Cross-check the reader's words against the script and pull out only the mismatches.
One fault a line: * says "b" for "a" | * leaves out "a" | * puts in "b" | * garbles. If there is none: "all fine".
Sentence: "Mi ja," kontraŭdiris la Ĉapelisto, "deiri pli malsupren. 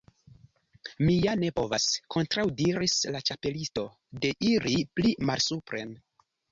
* puts in "ne povas"